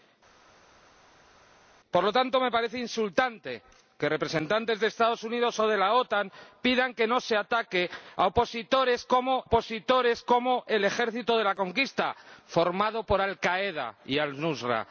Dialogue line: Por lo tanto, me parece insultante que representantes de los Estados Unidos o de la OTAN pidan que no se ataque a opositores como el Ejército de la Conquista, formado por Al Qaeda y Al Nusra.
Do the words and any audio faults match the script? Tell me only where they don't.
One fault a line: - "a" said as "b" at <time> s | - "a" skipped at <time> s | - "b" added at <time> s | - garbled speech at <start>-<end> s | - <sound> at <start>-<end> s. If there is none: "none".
- "opositores como" added at 9.4 s